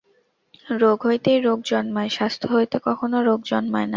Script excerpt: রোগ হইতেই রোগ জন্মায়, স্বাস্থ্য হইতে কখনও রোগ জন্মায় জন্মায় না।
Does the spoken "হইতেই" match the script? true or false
true